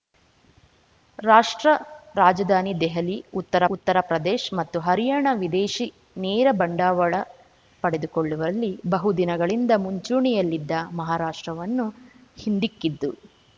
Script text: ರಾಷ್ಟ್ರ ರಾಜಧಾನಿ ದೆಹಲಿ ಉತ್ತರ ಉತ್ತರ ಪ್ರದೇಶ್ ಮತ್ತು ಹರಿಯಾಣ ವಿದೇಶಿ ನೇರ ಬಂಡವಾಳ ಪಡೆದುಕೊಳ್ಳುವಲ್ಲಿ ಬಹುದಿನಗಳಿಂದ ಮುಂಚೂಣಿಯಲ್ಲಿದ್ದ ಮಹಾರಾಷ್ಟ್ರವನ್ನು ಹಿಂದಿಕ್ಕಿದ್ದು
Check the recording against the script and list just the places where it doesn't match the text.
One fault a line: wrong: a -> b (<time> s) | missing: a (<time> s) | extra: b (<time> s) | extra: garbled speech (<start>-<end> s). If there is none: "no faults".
no faults